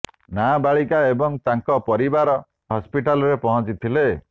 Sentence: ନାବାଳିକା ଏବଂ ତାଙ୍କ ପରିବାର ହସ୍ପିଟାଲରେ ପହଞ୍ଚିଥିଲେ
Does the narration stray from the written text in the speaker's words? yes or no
no